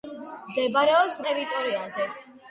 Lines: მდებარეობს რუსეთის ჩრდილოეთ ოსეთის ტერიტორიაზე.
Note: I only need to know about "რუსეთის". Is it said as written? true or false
false